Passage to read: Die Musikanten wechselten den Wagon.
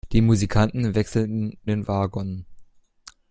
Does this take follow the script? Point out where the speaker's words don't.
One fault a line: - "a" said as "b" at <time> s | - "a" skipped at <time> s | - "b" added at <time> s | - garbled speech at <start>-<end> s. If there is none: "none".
none